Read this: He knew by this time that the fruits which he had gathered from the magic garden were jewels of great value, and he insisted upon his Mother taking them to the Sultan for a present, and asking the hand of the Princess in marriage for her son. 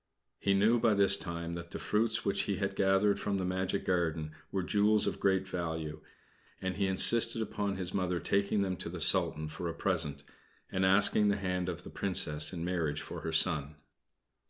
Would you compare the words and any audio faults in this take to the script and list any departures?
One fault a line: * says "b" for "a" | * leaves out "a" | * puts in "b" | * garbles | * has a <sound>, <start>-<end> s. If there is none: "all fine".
all fine